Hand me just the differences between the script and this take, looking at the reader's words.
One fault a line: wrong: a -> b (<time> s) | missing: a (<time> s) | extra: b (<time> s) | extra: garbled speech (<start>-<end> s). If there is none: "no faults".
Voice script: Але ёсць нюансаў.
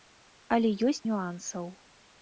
no faults